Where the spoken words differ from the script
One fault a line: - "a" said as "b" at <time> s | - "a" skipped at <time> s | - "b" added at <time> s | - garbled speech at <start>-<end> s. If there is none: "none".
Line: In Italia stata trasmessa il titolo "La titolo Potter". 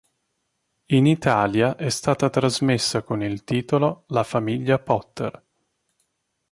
- "è" added at 1.8 s
- "con" added at 3.0 s
- "titolo" said as "famiglia" at 4.2 s